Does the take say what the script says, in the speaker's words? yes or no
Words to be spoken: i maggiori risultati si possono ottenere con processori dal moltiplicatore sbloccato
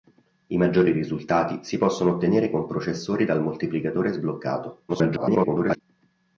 no